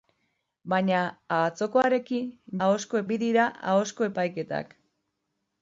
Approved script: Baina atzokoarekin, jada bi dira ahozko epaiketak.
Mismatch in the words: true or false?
true